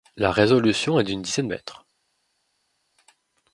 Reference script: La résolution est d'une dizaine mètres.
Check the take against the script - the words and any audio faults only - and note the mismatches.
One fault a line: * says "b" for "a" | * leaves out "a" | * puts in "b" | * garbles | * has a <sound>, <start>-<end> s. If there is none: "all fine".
all fine